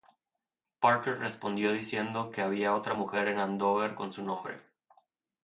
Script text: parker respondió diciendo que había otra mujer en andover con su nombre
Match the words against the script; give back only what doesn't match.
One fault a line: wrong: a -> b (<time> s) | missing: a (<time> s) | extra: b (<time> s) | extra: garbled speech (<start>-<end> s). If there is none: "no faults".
no faults